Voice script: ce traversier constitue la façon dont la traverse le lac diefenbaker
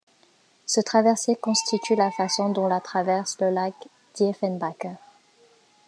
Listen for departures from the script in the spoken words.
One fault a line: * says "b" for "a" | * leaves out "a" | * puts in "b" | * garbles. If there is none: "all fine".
all fine